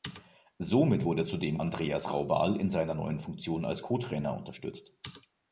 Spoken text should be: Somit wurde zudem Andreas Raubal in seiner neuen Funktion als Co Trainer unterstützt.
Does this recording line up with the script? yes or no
yes